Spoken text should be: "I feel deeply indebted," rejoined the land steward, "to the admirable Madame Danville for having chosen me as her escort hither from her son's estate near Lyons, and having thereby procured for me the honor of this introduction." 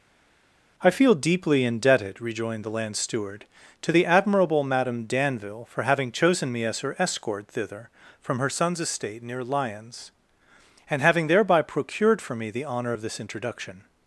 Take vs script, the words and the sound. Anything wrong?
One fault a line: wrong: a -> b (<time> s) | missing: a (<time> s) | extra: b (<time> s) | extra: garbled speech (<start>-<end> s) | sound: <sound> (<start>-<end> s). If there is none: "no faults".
wrong: hither -> thither (7.5 s)